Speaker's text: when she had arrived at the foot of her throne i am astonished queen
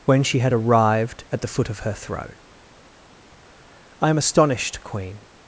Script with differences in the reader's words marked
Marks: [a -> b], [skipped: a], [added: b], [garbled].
when she had arrived at the foot of her throne i am astonished queen